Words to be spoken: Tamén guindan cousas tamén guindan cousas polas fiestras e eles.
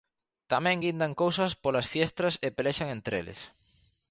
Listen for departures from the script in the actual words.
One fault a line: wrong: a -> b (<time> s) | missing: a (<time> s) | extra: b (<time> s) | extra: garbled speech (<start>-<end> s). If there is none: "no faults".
missing: tamén guindan cousas (1.5 s)
extra: pelexan entre (2.6 s)